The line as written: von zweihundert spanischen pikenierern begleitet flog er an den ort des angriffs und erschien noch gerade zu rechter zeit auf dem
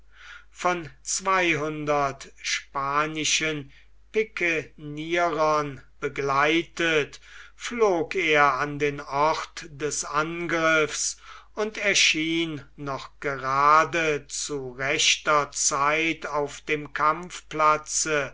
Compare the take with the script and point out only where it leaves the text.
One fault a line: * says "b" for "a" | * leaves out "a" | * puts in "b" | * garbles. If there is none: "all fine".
all fine